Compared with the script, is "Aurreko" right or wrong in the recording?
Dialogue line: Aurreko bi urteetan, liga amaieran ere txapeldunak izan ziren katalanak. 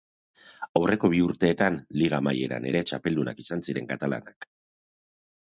right